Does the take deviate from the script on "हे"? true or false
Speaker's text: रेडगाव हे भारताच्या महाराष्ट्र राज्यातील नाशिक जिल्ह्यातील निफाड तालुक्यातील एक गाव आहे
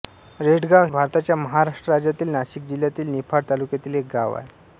true